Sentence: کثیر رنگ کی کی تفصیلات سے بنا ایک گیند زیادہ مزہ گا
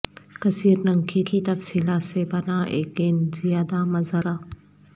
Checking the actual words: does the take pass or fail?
pass